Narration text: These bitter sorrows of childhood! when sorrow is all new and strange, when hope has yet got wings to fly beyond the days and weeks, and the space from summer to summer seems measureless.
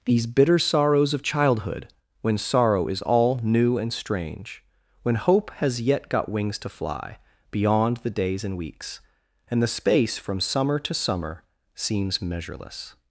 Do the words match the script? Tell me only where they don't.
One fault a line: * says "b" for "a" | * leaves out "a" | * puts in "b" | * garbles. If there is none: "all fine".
all fine